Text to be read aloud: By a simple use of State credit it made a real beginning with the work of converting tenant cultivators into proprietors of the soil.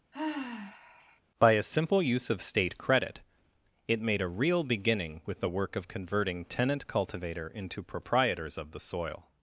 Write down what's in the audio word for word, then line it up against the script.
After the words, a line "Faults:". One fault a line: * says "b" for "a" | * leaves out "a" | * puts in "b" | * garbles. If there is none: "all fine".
By a simple use of State credit it made a real beginning with the work of converting tenant cultivator into proprietors of the soil.
Faults:
* says "cultivator" for "cultivators"